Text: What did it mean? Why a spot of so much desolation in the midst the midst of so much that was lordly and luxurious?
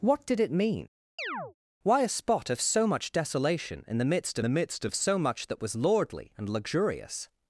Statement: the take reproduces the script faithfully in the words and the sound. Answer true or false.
false